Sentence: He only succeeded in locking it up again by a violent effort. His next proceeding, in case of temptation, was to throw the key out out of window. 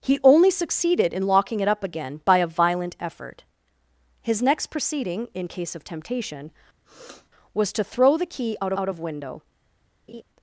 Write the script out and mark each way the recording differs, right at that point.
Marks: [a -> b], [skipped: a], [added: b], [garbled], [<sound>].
He only succeeded in locking it up again by a violent effort. His next proceeding, in case of temptation, [sniff] was to throw the key out out of window. [laugh]